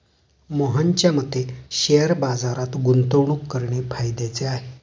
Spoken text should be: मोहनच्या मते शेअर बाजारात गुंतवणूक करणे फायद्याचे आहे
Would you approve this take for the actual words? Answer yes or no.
yes